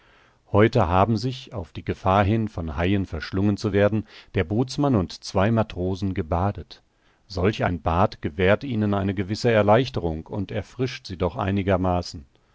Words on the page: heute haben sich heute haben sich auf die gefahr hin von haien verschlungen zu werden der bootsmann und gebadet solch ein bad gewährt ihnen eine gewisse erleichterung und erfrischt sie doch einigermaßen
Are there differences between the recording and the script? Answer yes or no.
yes